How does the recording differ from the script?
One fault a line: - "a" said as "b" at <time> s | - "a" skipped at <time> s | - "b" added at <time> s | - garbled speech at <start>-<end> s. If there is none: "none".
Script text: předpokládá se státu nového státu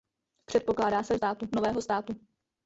none